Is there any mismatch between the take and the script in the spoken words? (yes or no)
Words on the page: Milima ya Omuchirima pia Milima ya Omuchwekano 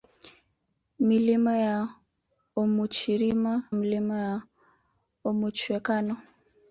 yes